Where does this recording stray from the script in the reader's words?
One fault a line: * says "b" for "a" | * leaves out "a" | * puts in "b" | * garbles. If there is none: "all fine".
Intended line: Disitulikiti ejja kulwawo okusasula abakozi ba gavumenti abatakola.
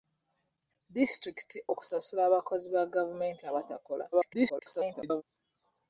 * leaves out "ejja kulwawo"
* garbles